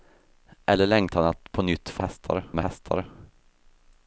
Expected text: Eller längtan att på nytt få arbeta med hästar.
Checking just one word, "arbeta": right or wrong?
wrong